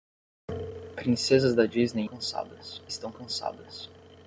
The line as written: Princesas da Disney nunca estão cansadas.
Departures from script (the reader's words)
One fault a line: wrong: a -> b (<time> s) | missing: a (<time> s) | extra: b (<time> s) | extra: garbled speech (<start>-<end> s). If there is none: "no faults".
wrong: nunca -> cansadas (2.0 s)